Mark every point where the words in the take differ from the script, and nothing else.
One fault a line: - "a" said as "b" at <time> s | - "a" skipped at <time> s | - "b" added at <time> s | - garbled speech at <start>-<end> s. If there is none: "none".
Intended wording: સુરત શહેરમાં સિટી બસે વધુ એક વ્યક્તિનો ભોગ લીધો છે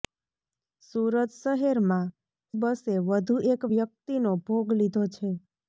- "સિટી" skipped at 2.1 s